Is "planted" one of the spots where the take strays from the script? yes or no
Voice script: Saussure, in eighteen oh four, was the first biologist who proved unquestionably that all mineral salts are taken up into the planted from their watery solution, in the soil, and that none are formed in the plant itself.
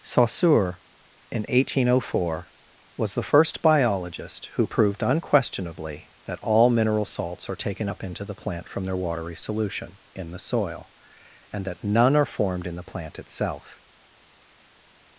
yes